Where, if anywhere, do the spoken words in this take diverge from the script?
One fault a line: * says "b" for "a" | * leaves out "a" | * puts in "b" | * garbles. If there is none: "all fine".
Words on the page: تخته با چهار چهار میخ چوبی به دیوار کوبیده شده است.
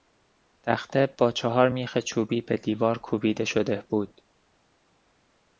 * leaves out "چهار"
* says "بود" for "است"